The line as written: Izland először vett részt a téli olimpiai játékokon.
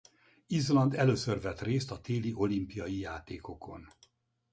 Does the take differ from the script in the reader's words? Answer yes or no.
no